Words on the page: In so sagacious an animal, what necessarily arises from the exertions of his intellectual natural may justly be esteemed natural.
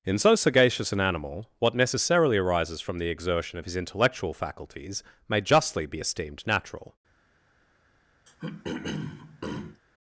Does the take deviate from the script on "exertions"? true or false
true